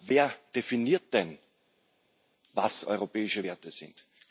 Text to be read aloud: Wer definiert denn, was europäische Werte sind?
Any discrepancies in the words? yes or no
no